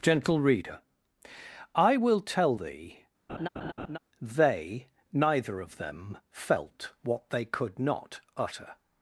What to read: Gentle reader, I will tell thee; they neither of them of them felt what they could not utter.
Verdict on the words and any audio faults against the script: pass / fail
fail